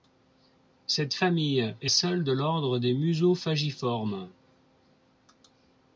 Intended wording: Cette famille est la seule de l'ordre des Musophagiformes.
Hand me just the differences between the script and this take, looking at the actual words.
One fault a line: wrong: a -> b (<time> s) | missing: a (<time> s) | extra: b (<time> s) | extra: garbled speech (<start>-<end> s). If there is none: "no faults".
missing: la (1.9 s)